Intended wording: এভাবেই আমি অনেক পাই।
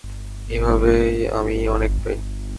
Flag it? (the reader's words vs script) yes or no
no